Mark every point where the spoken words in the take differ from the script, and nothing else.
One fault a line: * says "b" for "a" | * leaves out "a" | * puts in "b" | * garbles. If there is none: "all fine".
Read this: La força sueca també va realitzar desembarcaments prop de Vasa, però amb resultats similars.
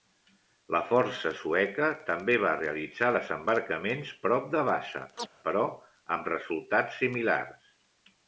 all fine